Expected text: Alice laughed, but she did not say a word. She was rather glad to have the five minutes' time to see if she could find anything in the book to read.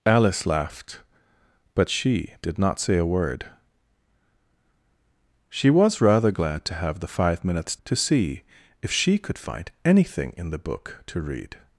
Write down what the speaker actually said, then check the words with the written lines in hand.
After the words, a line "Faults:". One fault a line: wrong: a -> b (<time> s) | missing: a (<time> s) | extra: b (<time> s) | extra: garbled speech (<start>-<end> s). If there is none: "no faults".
Alice laughed, but she did not say a word. She was rather glad to have the five minutes' to see if she could find anything in the book to read.
Faults:
missing: time (7.8 s)